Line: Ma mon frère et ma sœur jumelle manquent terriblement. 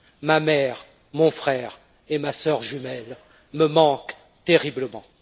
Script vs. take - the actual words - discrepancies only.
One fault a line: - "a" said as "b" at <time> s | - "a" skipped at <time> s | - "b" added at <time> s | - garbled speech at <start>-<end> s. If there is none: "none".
- "mère" added at 0.4 s
- "me" added at 3.5 s